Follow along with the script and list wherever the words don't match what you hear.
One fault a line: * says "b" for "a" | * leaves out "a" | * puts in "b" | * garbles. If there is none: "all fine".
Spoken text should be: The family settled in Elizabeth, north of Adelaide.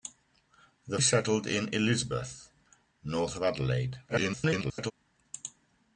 * leaves out "family"
* garbles